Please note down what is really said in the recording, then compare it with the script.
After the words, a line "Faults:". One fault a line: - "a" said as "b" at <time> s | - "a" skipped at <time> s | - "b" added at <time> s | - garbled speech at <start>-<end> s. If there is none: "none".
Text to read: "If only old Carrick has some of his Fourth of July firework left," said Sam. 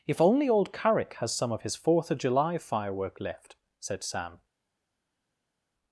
"If only old Carrick has some of his Fourth of July firework left," said Sam.
Faults:
none